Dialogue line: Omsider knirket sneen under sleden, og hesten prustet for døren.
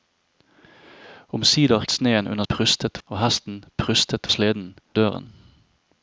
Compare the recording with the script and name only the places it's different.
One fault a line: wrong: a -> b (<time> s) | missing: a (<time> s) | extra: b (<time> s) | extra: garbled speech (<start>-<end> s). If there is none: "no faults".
missing: knirket (1.9 s)
wrong: sleden -> prustet (2.5 s)
wrong: for -> sleden (4.3 s)